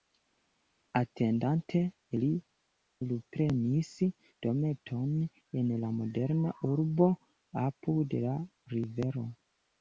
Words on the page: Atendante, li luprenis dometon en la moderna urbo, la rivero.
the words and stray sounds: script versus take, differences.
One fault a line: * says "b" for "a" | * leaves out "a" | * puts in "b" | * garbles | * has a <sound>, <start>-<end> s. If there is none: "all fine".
* puts in "apud"